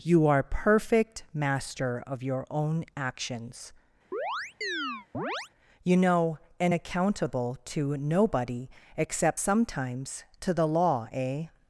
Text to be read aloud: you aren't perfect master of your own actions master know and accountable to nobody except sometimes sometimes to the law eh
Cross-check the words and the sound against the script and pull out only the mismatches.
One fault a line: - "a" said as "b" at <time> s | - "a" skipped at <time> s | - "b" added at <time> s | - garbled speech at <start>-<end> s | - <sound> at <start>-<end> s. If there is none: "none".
- "aren't" said as "are" at 0.2 s
- chirp at 4.1-5.5 s
- "master" said as "you" at 5.8 s
- "sometimes" skipped at 10.2 s